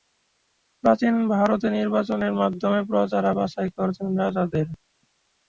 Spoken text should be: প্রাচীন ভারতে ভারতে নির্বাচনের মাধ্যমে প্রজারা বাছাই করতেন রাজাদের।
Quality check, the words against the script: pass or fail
fail